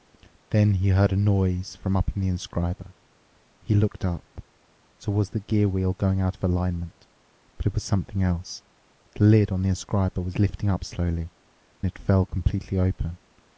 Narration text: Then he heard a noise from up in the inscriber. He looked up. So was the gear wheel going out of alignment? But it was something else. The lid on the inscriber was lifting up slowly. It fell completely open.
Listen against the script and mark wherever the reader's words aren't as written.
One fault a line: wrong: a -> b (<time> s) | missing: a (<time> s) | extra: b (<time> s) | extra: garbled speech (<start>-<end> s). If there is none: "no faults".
no faults